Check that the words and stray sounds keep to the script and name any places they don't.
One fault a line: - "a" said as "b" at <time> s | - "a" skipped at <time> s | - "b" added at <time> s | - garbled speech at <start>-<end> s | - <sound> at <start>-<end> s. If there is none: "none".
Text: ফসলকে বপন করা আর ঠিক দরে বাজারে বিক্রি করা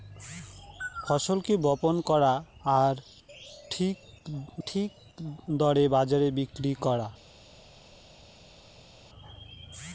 - "ঠিক" added at 4.7 s